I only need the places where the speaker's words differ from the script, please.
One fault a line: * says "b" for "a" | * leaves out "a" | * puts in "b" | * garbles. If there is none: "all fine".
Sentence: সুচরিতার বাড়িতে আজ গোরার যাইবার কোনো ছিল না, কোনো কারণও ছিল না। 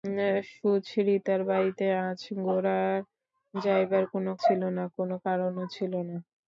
all fine